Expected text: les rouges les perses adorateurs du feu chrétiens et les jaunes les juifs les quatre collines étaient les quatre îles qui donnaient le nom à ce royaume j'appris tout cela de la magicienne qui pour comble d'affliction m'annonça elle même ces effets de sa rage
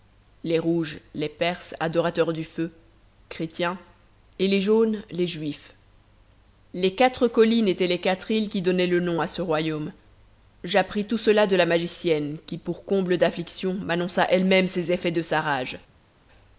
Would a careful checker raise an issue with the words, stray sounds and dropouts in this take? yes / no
no